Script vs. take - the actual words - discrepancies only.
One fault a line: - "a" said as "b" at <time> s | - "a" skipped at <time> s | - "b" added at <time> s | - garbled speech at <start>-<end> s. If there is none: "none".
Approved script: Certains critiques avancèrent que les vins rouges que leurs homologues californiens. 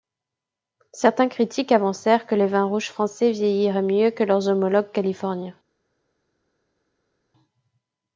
- "français vieilliraient mieux" added at 2.9 s